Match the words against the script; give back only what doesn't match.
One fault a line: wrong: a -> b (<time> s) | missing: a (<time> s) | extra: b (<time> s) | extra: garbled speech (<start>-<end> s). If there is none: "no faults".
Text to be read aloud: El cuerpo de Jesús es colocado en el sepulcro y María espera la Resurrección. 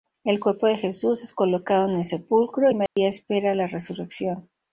no faults